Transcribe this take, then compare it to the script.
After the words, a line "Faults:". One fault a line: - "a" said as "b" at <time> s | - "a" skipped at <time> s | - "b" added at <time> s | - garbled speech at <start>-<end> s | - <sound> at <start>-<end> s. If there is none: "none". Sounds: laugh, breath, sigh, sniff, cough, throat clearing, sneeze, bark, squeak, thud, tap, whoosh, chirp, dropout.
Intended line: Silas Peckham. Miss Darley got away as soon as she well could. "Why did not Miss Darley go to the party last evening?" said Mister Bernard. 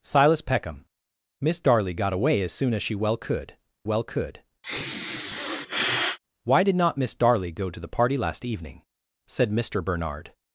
Silas Peckham. Miss Darley got away as soon as she well could well could. "Why did not Miss Darley go to the party last evening?" said Mister Bernard.
Faults:
- "well could" added at 3.8 s
- sniff at 4.6-6.2 s